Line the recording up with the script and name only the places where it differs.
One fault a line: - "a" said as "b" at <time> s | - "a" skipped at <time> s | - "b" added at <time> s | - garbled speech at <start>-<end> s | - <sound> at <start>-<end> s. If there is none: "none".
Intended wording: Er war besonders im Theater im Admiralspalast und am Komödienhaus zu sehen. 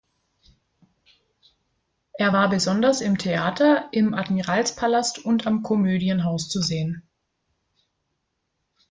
none